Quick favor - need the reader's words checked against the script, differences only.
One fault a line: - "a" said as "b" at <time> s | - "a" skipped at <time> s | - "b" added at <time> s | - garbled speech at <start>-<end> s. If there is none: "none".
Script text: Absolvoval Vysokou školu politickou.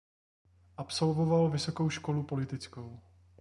none